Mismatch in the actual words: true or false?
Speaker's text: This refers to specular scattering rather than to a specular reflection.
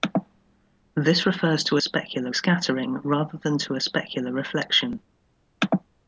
false